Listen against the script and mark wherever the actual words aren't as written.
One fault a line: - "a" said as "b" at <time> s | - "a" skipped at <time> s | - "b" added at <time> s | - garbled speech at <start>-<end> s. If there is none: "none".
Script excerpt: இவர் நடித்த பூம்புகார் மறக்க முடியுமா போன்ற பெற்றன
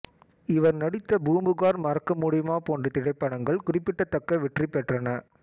- "திரைப்படங்கள் குறிப்பிடத்தக்க வெற்றி" added at 2.9 s